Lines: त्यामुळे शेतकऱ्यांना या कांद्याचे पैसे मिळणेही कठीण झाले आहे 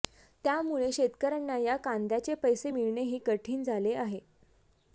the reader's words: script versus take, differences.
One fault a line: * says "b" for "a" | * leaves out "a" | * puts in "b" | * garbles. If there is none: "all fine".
all fine